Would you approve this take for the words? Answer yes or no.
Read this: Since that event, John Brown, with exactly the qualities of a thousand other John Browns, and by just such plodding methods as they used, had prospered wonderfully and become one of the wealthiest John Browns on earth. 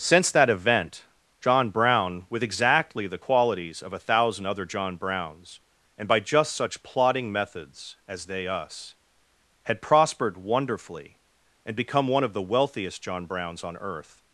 no